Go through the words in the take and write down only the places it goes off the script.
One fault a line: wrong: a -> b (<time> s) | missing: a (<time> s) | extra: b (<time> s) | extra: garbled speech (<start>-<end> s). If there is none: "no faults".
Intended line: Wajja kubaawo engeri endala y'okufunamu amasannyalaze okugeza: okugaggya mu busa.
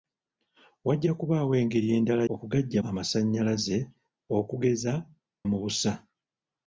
wrong: y'okufunamu -> okugaggya (2.3 s)
missing: okugaggya (4.9 s)